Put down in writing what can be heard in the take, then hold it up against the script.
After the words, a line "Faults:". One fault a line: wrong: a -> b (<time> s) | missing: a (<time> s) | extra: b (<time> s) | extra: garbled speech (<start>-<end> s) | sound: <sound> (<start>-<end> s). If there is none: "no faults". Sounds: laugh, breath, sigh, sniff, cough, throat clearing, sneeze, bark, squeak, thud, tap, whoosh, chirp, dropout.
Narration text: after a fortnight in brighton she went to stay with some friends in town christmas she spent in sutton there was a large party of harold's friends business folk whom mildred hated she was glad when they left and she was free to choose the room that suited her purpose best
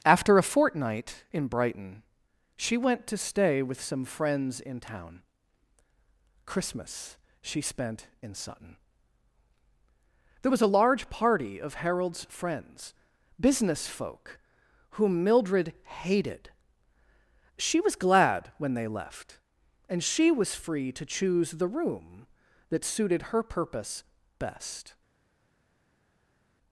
after a fortnight in brighton she went to stay with some friends in town christmas she spent in sutton there was a large party of harold's friends business folk whom mildred hated she was glad when they left and she was free to choose the room that suited her purpose best
Faults:
no faults